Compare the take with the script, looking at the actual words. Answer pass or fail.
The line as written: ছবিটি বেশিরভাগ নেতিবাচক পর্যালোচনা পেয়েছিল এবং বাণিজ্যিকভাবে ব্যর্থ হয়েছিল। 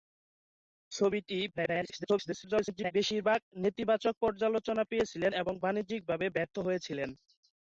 fail